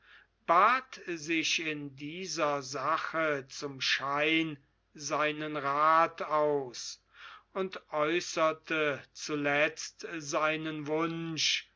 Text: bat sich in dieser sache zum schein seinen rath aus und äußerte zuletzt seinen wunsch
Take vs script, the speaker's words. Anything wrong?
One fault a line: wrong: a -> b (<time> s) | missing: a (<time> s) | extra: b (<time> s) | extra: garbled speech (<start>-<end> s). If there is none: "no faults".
no faults